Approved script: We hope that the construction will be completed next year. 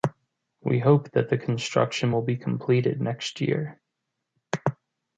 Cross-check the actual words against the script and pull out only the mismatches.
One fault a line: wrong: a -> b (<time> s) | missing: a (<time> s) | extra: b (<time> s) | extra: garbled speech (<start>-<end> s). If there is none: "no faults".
no faults